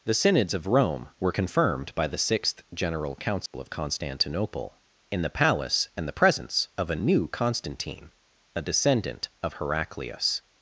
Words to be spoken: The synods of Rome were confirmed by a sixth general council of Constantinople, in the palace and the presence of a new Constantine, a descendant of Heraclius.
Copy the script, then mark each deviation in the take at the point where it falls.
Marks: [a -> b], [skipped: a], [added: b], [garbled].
The synods of Rome were confirmed by [a -> the] sixth general council of Constantinople, in the palace and the presence of a new Constantine, a descendant of Heraclius.